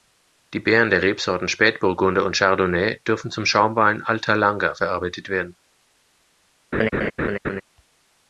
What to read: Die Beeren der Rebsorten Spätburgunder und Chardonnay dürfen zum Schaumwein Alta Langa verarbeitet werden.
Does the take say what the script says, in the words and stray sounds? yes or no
no